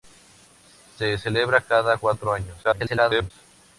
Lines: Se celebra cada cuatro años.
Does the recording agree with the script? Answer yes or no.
no